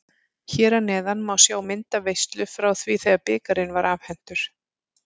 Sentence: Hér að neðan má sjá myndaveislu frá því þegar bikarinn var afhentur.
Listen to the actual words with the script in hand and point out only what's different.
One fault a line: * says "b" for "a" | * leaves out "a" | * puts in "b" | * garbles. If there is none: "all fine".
all fine